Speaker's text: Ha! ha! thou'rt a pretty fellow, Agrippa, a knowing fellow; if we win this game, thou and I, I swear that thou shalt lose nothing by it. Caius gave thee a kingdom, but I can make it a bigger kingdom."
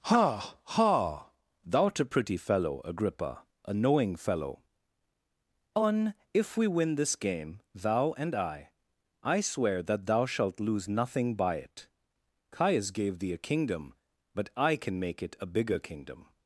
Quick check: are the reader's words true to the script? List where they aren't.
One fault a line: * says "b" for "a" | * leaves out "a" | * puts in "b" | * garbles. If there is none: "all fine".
* puts in "on"